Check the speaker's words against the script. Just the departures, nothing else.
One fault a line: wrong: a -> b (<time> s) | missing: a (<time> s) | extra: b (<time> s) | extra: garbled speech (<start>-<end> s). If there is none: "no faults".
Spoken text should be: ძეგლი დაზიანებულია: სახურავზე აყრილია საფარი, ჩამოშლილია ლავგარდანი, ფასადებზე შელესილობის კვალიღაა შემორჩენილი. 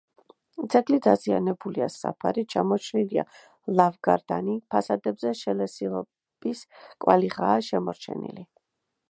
missing: სახურავზე აყრილია (1.9 s)